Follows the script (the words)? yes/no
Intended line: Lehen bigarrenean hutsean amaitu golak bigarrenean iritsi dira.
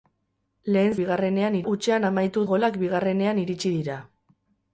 yes